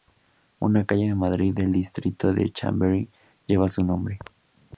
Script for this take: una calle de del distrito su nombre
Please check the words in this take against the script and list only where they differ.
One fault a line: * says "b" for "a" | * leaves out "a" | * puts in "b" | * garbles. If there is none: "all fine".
* puts in "madrid"
* puts in "de chamberí lleva"